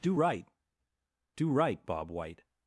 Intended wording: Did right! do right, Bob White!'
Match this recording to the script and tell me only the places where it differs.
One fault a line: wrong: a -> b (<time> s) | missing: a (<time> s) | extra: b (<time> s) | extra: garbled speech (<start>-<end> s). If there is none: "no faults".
wrong: Did -> Do (0.0 s)